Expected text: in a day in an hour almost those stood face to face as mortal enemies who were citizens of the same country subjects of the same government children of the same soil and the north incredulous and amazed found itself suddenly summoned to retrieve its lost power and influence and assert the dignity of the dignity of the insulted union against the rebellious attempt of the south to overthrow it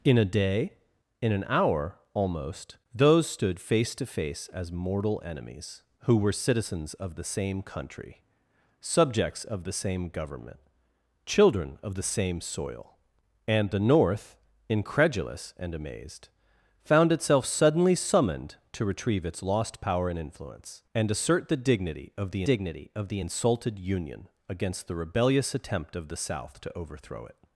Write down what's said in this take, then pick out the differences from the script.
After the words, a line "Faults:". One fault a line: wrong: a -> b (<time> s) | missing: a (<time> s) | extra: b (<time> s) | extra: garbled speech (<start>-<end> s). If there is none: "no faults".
in a day in an hour almost those stood face to face as mortal enemies who were citizens of the same country subjects of the same government children of the same soil and the north incredulous and amazed found itself suddenly summoned to retrieve its lost power and influence and assert the dignity of the dignity of the insulted union against the rebellious attempt of the south to overthrow it
Faults:
no faults